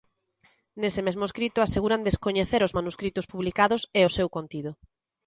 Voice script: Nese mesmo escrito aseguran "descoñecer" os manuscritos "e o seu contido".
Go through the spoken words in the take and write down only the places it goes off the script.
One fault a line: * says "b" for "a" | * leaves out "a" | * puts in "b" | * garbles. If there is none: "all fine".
* puts in "publicados"